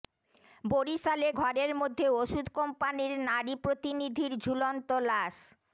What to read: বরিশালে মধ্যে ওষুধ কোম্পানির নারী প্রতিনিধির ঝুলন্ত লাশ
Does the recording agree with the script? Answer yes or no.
no